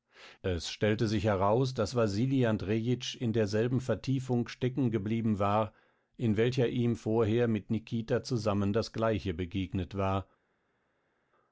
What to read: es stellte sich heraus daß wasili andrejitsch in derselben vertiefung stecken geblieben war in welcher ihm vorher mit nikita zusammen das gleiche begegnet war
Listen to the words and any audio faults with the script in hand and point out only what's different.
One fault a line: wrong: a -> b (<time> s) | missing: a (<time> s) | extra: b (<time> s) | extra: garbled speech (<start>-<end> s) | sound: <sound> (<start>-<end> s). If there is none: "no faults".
no faults